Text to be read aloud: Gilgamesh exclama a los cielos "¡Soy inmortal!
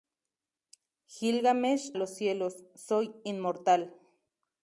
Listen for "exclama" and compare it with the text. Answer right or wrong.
wrong